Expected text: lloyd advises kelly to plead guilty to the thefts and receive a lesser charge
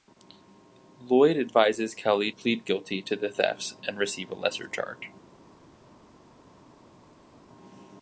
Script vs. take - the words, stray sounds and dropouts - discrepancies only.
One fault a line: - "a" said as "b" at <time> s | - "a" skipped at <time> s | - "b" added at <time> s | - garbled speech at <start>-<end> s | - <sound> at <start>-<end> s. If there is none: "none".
- "to" skipped at 2.3 s